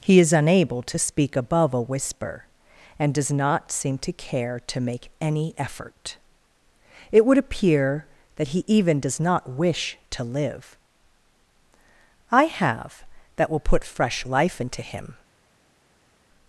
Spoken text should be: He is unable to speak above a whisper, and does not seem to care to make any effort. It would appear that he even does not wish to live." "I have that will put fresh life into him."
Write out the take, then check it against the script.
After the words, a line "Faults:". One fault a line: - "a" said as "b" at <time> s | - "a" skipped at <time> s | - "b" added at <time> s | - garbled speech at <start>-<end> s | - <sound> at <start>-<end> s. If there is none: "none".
He is unable to speak above a whisper, and does not seem to care to make any effort. It would appear that he even does not wish to live." "I have that will put fresh life into him."
Faults:
none